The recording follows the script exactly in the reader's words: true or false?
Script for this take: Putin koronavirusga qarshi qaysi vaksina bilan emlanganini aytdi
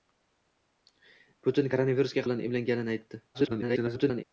false